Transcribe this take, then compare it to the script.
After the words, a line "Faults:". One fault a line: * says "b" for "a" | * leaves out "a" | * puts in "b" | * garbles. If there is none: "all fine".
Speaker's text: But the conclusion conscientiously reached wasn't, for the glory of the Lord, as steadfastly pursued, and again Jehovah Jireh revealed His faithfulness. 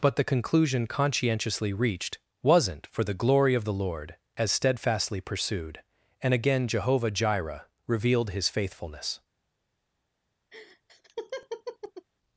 But the conclusion conscientiously reached wasn't, for the glory of the Lord, as steadfastly pursued, and again Jehovah Jireh revealed His faithfulness.
Faults:
all fine